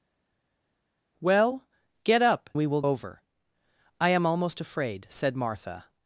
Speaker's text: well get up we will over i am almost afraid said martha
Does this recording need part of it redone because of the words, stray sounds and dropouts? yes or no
no